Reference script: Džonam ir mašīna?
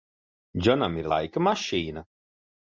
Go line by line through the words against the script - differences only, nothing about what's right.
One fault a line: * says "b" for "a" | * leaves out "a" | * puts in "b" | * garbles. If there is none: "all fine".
* puts in "laika"